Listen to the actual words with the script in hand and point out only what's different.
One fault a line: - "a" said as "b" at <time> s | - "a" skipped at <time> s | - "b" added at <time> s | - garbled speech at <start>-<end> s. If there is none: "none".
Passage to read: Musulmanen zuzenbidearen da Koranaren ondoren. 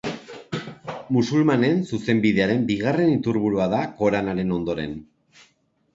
- "bigarren iturburua" added at 2.7 s